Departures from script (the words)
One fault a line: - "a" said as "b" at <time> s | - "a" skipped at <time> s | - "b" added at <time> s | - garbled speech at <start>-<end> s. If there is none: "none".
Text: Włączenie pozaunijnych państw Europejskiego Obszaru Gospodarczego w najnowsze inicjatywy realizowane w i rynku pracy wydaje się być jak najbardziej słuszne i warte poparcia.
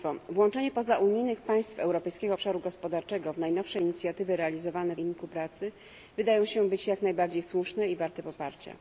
none